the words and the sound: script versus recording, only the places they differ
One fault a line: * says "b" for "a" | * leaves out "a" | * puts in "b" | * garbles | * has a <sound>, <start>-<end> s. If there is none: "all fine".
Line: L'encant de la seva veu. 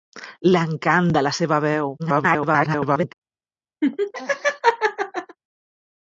* garbles
* has a laugh, 3.8-5.4 s